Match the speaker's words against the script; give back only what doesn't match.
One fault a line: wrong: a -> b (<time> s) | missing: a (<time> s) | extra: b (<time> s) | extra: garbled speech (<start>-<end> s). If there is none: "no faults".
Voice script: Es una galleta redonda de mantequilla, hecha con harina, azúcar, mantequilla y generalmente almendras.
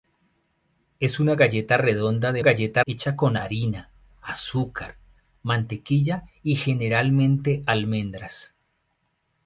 wrong: mantequilla -> galleta (2.4 s)